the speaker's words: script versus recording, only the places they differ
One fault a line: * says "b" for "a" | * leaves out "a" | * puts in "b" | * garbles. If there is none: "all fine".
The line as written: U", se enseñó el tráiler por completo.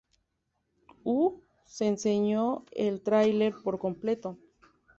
all fine